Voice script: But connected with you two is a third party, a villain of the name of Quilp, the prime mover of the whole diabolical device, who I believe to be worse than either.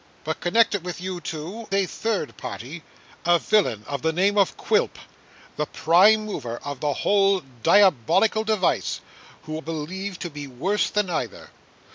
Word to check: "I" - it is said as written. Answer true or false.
false